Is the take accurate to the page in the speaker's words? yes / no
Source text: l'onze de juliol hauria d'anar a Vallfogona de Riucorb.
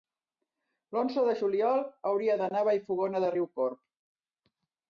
yes